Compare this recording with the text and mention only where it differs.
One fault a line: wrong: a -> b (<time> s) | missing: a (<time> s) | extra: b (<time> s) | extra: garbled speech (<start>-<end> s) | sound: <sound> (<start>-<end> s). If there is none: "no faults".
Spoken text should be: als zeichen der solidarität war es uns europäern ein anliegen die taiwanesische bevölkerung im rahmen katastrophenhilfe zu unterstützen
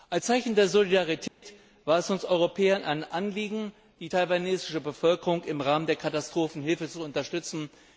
sound: dropout (1.3-1.4 s)
extra: der (5.9 s)